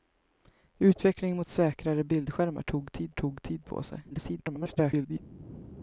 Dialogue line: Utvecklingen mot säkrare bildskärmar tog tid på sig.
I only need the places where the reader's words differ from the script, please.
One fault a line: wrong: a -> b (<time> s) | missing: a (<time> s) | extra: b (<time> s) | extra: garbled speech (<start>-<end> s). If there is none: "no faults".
extra: tog tid (3.1 s)
extra: garbled speech (4.1-5.2 s)